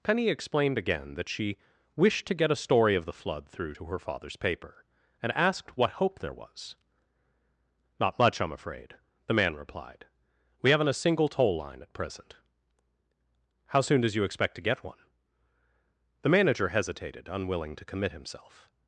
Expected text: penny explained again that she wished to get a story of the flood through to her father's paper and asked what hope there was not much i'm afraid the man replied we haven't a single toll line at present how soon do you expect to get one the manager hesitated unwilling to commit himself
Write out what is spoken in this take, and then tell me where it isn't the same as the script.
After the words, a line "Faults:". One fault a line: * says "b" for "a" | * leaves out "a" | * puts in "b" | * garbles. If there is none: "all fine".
penny explained again that she wished to get a story of the flood through to her father's paper and asked what hope there was not much i'm afraid the man replied we haven't a single toll line at present how soon does you expect to get one the manager hesitated unwilling to commit himself
Faults:
* says "does" for "do"